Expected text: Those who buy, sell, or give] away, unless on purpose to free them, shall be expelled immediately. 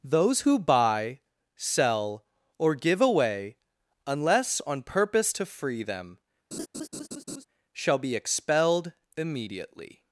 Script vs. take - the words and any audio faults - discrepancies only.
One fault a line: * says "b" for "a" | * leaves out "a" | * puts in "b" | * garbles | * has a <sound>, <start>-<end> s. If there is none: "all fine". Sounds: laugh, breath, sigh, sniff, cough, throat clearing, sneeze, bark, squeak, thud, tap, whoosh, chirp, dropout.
* has a laugh, 6.5-7.4 s